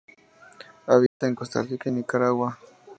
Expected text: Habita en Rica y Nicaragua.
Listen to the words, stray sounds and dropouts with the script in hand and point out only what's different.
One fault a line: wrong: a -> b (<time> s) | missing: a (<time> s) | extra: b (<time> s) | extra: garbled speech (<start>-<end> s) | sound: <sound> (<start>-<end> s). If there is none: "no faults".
sound: dropout (1.1-1.2 s)
extra: Costa (1.4 s)